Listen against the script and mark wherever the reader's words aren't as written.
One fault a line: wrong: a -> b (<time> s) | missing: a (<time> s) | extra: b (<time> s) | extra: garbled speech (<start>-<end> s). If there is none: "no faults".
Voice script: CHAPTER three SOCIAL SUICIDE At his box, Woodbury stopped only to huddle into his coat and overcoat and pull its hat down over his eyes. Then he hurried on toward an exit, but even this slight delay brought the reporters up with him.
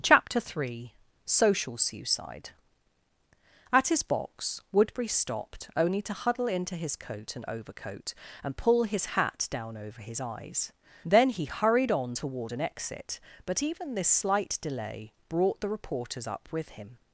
wrong: its -> his (8.8 s)